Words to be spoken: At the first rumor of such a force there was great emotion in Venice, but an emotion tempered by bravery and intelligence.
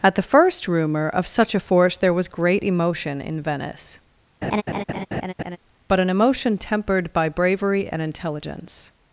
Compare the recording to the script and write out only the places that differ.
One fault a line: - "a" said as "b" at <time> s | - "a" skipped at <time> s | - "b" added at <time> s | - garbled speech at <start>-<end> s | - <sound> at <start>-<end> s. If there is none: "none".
- laugh at 4.4-5.6 s